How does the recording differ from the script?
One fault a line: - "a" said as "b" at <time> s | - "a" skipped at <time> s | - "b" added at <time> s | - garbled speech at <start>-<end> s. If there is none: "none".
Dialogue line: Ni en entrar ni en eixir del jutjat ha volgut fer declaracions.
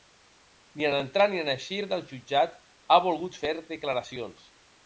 none